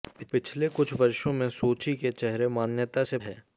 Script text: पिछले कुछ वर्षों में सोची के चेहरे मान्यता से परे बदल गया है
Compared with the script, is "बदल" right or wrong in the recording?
wrong